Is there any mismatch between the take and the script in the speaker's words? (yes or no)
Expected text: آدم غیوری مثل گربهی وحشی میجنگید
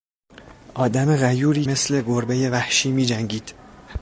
no